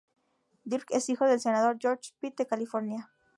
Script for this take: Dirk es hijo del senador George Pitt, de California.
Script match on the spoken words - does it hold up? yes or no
yes